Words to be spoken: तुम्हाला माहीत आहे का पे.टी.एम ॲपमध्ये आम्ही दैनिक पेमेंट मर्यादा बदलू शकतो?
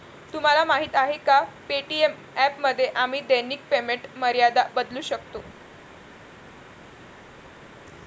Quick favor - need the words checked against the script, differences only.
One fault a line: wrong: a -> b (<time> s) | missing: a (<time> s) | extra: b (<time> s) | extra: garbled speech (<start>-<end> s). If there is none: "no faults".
no faults